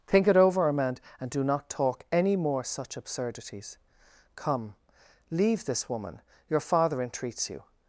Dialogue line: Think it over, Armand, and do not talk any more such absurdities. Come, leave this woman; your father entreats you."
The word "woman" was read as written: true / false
true